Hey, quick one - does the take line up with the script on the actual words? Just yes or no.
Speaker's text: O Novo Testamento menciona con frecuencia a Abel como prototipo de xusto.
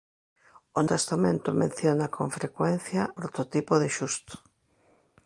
no